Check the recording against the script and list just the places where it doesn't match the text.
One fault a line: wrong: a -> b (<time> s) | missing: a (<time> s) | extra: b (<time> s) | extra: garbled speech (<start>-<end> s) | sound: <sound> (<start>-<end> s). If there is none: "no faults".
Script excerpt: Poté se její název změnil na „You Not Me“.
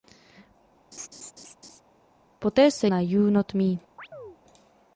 sound: laugh (0.9-1.8 s)
missing: její název změnil (2.9 s)
sound: chirp (4.0-4.4 s)